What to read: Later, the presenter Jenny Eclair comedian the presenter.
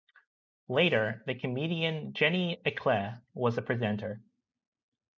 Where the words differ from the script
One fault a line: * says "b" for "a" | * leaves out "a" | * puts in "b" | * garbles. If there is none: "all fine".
* says "comedian" for "presenter"
* says "was" for "comedian"